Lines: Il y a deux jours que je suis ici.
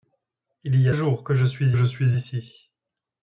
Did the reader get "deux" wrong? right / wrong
wrong